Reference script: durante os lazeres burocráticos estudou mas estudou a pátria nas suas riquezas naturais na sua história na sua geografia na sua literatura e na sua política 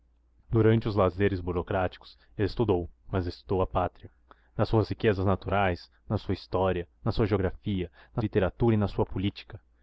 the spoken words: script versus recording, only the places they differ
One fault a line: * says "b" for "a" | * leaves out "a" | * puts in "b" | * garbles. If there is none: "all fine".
* leaves out "sua"